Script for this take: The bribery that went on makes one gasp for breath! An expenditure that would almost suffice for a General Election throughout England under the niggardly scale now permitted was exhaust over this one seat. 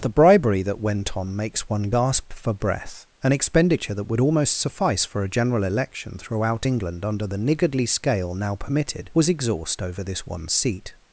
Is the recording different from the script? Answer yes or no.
no